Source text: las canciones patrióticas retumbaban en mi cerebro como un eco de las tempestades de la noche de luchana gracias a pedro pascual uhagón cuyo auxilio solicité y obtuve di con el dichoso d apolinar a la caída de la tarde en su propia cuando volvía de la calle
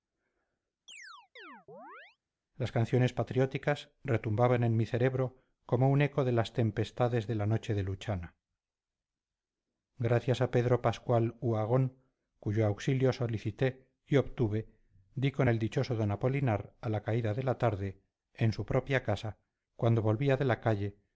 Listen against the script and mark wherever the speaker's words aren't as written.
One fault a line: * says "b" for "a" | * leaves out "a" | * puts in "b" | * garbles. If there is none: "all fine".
* puts in "casa"